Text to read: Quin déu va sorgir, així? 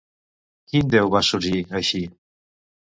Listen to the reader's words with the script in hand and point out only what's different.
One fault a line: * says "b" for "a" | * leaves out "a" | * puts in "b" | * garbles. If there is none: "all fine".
all fine